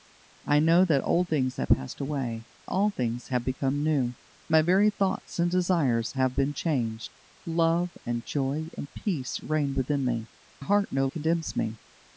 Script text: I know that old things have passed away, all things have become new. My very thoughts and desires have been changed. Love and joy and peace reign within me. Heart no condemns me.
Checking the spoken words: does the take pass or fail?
pass